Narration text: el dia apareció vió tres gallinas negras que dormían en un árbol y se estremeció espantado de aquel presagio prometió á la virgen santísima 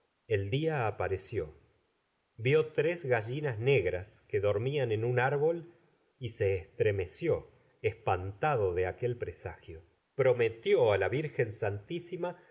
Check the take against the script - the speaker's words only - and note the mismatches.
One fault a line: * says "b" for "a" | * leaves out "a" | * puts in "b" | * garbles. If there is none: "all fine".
all fine